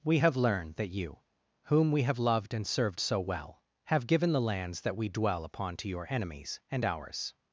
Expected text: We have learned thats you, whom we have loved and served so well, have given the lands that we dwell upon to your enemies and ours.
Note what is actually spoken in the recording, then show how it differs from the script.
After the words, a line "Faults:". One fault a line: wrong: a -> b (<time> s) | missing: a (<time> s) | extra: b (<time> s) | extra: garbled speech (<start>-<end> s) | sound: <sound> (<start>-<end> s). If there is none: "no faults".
We have learned that you, whom we have loved and served so well, have given the lands that we dwell upon to your enemies and ours.
Faults:
wrong: thats -> that (0.7 s)